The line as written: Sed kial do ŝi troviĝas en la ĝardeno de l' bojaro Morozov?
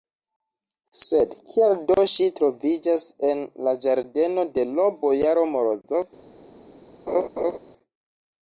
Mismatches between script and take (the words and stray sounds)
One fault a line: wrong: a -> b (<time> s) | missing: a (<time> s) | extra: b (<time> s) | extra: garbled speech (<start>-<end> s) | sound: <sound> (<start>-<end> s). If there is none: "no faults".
sound: laugh (7.1-7.6 s)